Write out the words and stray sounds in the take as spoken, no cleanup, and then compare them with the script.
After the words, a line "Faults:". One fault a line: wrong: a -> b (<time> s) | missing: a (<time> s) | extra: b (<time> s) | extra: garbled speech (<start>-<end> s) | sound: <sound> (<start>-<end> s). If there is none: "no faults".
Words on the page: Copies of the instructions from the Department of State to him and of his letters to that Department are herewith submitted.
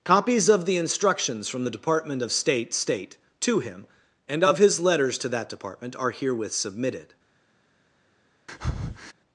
Copies of the instructions from the Department of State State to him and of his letters to that Department are herewith submitted.
Faults:
extra: State (2.7 s)
sound: breath (8.5-9.1 s)